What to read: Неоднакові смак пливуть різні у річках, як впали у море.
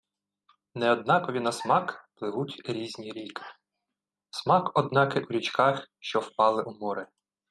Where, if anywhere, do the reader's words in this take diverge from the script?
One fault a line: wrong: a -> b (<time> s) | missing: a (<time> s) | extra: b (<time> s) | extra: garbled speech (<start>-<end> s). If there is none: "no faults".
extra: на (1.4 s)
extra: ріки Смак однакий (3.1 s)
wrong: як -> що (6.0 s)